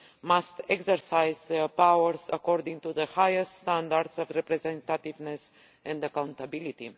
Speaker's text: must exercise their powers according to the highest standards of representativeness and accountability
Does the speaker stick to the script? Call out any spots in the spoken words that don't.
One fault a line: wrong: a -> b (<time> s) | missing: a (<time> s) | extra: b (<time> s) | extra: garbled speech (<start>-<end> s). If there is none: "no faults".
no faults